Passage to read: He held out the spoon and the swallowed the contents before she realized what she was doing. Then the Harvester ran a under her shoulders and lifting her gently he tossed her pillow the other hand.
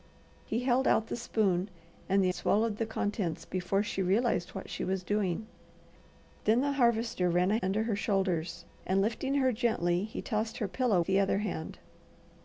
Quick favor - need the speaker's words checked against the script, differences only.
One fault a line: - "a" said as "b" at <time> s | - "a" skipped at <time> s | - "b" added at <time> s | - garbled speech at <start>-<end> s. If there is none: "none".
none